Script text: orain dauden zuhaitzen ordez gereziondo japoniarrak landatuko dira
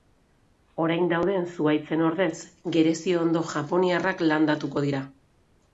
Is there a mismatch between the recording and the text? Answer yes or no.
no